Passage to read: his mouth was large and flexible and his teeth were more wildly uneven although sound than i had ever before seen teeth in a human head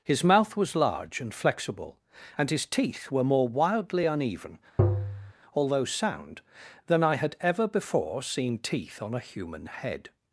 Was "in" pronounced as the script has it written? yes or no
no